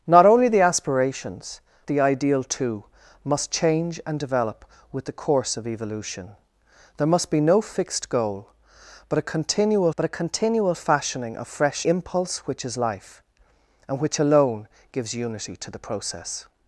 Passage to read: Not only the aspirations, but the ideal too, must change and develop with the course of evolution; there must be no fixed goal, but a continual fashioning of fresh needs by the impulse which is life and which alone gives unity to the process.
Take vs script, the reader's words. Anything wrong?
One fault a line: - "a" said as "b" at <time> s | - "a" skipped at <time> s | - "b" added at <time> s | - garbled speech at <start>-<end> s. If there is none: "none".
- "but" skipped at 1.6 s
- "but a continual" added at 9.9 s
- "needs by the" skipped at 11.9 s